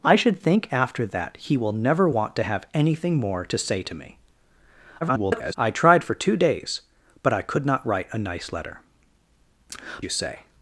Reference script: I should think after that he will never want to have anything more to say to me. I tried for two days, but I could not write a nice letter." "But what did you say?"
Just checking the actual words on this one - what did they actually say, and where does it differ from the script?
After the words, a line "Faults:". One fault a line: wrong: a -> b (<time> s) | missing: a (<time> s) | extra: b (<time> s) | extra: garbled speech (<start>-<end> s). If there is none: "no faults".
I should think after that he will never want to have anything more to say to me. [garbled] I tried for two days, but I could not write a nice letter." "You say?"
Faults:
extra: garbled speech (5.0-5.6 s)
missing: But what did (8.8 s)